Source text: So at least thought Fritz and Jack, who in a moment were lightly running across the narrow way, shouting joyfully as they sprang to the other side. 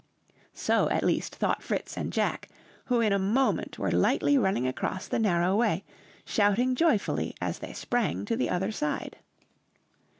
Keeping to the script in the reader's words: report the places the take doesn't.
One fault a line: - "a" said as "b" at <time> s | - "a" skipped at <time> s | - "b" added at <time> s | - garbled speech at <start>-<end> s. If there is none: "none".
none